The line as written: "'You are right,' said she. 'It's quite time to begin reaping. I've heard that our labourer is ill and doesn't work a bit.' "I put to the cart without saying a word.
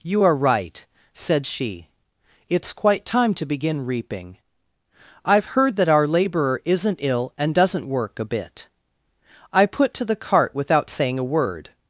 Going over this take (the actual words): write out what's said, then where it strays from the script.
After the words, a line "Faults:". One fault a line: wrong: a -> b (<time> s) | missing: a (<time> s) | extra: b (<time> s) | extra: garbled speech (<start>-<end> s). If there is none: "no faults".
"'You are right,' said she. 'It's quite time to begin reaping. I've heard that our labourer isn't ill and doesn't work a bit.' "I put to the cart without saying a word.
Faults:
wrong: is -> isn't (6.6 s)